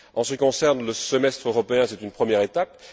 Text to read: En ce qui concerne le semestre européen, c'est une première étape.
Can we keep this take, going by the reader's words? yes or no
no